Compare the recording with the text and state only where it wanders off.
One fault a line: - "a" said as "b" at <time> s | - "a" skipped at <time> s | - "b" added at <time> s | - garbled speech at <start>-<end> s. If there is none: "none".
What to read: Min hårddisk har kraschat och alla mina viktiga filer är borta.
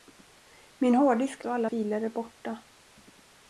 - "har kraschat" skipped at 1.4 s
- "mina viktiga" skipped at 1.7 s